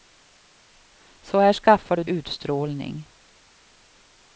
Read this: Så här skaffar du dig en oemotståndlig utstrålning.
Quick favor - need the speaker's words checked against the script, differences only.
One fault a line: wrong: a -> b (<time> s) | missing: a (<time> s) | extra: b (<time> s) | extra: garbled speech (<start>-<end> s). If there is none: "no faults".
missing: dig en oemotståndlig (2.0 s)